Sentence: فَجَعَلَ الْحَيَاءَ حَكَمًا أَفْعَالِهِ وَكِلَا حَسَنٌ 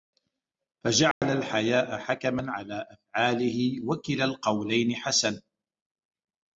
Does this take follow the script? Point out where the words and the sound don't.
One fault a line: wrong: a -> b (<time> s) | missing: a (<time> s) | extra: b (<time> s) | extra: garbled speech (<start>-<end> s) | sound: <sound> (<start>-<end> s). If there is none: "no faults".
sound: dropout (1.1-1.2 s)
extra: عَلَى (2.5 s)
extra: الْقَوْلَيْنِ (4.2 s)